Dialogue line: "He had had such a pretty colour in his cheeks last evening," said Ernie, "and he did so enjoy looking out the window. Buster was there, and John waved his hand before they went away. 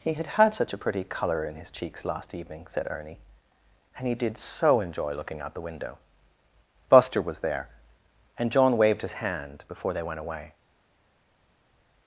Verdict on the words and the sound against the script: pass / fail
pass